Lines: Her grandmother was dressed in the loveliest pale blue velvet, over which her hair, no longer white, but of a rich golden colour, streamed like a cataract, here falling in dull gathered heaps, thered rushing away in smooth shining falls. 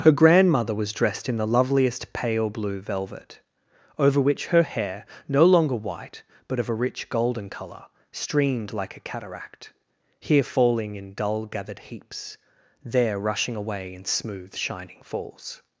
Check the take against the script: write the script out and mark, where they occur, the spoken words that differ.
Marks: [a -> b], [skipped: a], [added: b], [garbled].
Her grandmother was dressed in the loveliest pale blue velvet, over which her hair, no longer white, but of a rich golden colour, streamed like a cataract, here falling in dull gathered heaps, [thered -> there] rushing away in smooth shining falls.